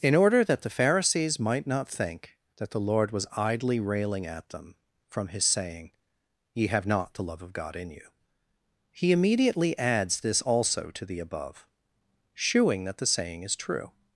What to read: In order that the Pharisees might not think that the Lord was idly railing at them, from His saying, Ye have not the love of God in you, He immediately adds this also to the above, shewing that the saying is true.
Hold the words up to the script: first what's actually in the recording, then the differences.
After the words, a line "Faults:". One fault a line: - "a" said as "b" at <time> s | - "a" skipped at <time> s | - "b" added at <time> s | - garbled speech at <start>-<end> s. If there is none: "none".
In order that the Pharisees might not think that the Lord was idly railing at them, from His saying, Ye have not the love of God in you, He immediately adds this also to the above, shewing that the saying is true.
Faults:
none